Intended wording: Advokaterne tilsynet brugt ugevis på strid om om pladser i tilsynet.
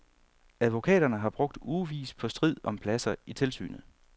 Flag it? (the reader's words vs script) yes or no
yes